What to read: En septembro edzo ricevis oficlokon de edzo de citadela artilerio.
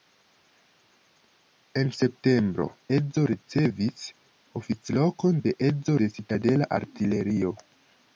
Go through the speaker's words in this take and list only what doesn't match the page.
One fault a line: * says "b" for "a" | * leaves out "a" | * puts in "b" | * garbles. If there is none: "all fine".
all fine